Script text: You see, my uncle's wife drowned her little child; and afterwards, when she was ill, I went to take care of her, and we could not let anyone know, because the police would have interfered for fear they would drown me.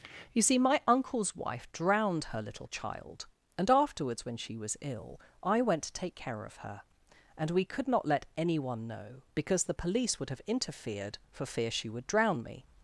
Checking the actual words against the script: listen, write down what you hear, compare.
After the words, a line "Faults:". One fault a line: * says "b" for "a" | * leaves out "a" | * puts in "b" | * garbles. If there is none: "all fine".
You see, my uncle's wife drowned her little child; and afterwards, when she was ill, I went to take care of her, and we could not let anyone know, because the police would have interfered for fear she would drown me.
Faults:
* says "she" for "they"